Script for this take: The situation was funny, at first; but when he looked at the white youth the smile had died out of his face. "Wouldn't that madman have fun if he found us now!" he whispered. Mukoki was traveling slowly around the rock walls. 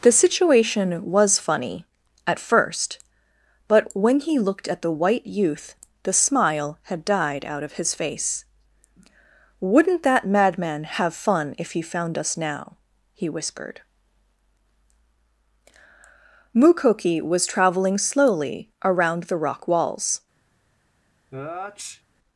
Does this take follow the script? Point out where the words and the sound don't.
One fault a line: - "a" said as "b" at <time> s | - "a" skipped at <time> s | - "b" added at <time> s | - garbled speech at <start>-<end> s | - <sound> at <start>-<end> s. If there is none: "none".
- sneeze at 21.3-22.0 s